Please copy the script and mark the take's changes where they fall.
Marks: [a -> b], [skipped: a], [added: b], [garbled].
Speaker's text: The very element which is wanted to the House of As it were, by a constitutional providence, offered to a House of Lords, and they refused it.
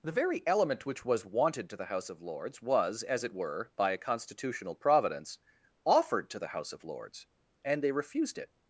The very element which [is -> was] wanted to the House of [added: Lords was] As it were, by a constitutional providence, offered to [a -> the] House of Lords, and they refused it.